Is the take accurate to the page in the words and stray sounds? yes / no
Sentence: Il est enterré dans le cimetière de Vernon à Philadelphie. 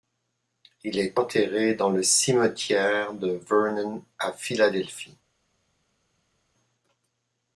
yes